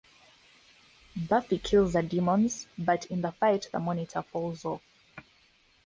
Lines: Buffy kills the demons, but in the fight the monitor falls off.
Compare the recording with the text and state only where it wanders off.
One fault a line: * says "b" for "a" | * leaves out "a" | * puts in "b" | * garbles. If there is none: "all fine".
all fine